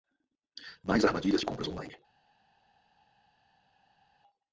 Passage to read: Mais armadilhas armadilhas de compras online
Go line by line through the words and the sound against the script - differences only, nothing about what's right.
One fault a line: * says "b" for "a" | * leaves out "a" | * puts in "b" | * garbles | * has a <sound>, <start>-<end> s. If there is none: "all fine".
* leaves out "armadilhas"